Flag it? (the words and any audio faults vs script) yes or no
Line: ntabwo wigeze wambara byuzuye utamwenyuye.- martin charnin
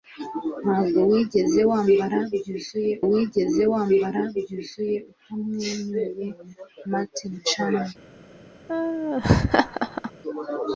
yes